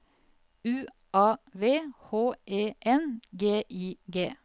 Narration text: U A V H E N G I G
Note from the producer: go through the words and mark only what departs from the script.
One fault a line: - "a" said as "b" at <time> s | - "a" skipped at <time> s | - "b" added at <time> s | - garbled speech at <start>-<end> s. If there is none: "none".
none